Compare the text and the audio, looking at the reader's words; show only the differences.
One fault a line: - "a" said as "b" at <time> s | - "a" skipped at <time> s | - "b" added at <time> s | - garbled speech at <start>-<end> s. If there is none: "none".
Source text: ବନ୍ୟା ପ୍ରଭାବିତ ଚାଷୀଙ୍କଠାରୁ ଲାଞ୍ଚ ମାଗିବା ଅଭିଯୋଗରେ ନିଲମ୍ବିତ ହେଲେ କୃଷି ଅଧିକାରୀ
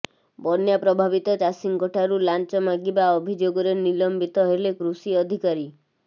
none